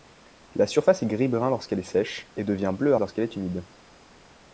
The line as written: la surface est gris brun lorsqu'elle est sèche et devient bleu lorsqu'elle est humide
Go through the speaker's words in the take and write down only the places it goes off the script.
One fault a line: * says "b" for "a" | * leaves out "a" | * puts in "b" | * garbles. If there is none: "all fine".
all fine